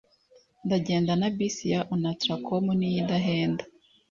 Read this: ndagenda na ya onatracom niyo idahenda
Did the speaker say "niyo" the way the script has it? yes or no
yes